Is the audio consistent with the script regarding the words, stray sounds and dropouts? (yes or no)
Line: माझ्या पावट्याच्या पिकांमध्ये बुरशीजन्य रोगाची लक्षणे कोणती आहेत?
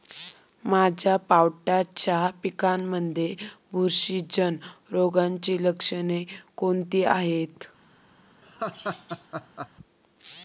no